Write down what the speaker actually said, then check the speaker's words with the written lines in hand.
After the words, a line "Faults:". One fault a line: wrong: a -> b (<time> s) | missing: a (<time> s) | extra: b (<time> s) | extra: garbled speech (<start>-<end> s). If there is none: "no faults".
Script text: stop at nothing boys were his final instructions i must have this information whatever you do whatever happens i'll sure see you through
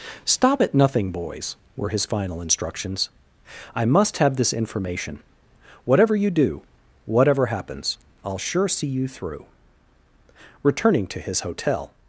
stop at nothing boys were his final instructions i must have this information whatever you do whatever happens i'll sure see you through returning to his hotel
Faults:
extra: returning to his hotel (10.6 s)